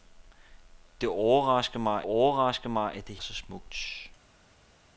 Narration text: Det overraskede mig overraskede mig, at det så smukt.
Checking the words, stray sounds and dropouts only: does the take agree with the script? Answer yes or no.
yes